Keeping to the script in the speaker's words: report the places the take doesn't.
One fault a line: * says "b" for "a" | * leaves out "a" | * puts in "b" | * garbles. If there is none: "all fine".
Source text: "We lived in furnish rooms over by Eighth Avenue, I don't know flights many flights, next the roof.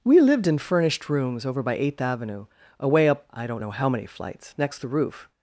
* says "furnished" for "furnish"
* puts in "away up"
* says "how" for "flights"